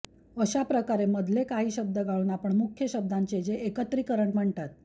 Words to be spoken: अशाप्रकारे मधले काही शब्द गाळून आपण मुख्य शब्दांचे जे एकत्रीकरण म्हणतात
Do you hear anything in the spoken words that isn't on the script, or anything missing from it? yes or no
no